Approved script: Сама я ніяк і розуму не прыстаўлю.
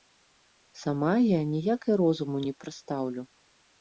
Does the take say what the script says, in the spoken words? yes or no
yes